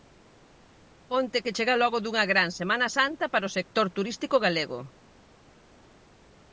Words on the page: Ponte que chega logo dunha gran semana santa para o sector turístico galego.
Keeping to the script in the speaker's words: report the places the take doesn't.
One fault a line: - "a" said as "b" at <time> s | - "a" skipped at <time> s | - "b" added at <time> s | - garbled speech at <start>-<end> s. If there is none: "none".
none